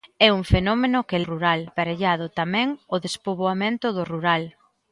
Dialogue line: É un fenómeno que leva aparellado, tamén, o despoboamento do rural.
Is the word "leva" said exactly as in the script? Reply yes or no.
no